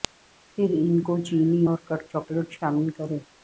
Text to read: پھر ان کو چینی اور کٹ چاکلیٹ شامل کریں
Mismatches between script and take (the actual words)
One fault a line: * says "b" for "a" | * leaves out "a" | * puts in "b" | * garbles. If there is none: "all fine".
all fine